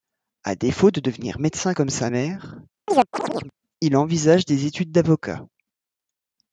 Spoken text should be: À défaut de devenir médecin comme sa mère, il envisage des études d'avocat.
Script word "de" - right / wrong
right